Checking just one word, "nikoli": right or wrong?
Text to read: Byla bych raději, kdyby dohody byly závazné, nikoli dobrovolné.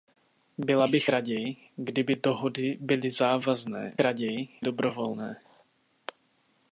wrong